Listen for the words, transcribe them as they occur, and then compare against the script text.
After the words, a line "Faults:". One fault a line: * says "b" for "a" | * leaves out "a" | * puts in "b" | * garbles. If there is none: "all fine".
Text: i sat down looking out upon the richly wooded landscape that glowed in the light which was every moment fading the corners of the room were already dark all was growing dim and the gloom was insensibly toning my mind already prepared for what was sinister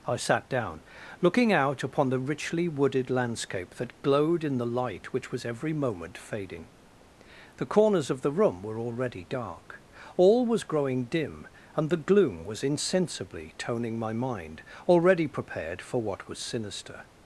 i sat down looking out upon the richly wooded landscape that glowed in the light which was every moment fading the corners of the room were already dark all was growing dim and the gloom was insensibly toning my mind already prepared for what was sinister
Faults:
all fine